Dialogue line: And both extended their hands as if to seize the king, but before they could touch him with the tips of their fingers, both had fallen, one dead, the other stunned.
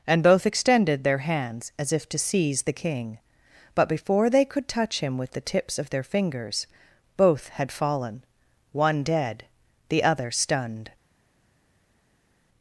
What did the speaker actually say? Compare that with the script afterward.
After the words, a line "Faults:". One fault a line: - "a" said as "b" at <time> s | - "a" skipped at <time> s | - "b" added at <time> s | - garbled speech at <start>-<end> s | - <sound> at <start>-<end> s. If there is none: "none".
And both extended their hands as if to seize the king, but before they could touch him with the tips of their fingers, both had fallen, one dead, the other stunned.
Faults:
none